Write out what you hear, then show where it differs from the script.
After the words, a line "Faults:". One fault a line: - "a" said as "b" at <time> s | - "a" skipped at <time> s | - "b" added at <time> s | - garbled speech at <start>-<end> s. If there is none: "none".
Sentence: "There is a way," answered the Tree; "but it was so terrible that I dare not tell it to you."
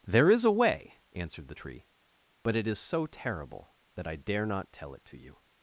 "There is a way," answered the Tree; "but it is so terrible that I dare not tell it to you."
Faults:
- "was" said as "is" at 2.7 s